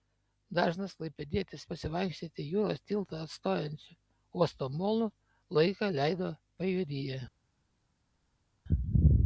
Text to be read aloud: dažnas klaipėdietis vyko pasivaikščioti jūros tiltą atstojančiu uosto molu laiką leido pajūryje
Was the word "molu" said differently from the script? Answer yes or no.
no